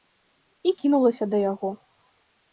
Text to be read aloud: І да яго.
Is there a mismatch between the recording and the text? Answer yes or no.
yes